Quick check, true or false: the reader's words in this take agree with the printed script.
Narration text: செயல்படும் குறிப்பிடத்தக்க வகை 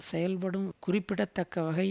true